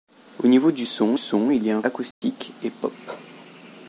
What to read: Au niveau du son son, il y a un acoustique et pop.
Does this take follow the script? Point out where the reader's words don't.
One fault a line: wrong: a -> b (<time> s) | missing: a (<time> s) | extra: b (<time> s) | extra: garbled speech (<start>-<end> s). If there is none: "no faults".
no faults